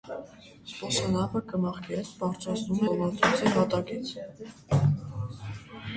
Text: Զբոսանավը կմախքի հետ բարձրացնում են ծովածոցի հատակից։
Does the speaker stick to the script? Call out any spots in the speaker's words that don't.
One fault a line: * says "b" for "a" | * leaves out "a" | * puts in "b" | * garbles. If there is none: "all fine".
* leaves out "են"